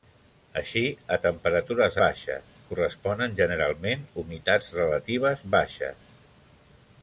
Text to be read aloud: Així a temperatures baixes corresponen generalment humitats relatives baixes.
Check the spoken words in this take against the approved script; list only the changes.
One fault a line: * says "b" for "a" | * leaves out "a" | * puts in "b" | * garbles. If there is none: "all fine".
all fine